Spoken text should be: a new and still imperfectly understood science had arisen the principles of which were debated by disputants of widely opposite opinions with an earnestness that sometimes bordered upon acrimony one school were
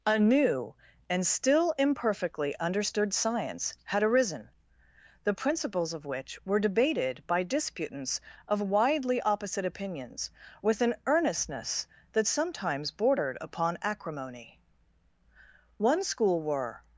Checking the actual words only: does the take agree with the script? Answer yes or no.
yes